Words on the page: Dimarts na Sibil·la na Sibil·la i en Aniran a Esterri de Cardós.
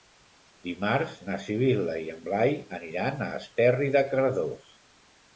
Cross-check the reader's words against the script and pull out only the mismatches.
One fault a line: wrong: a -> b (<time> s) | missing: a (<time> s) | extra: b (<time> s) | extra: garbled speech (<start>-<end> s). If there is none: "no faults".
missing: na Sibil·la (2.0 s)
extra: Blai (2.3 s)